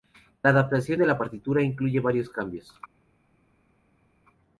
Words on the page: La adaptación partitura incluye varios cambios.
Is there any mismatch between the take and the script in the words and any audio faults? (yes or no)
yes